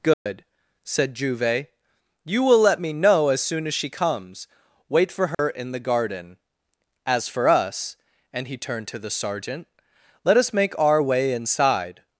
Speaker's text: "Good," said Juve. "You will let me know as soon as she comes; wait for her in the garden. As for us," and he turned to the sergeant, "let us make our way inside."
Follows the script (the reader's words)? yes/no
yes